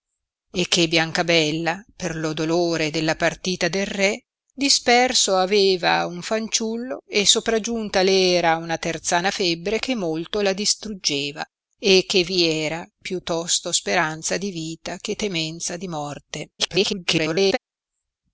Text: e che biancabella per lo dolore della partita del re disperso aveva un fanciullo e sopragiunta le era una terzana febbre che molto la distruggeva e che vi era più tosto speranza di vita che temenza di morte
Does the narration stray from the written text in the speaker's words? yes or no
yes